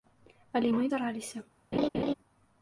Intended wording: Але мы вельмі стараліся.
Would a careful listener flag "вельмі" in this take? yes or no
yes